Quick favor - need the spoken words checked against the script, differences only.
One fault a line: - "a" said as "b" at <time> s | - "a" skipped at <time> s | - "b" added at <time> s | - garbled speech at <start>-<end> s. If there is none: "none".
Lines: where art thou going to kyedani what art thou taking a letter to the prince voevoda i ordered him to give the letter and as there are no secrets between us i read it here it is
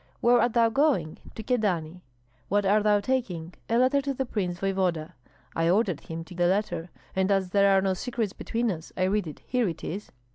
- "give" skipped at 6.3 s